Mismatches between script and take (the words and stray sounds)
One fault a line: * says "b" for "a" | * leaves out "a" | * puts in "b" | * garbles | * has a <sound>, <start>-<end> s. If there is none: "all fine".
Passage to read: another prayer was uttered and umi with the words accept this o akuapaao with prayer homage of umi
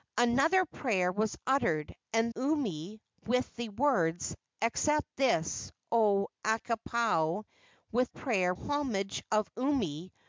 all fine